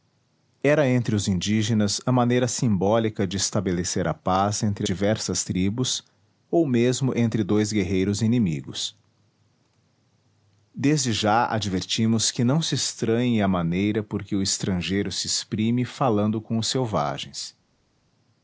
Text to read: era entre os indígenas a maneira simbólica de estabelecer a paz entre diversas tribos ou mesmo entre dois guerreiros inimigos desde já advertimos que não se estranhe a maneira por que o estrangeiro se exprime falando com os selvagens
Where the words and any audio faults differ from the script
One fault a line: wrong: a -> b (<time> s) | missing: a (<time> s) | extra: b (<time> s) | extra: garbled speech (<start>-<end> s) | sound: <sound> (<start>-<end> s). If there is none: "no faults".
no faults